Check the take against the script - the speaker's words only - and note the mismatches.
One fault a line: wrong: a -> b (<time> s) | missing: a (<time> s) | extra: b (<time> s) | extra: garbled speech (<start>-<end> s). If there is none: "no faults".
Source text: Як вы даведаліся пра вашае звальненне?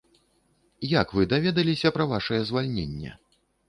no faults